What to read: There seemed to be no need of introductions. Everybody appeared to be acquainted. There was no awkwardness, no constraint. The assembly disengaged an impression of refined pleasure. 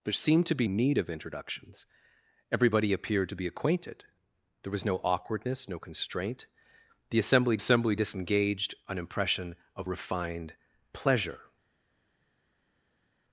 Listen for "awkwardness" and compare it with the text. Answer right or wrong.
right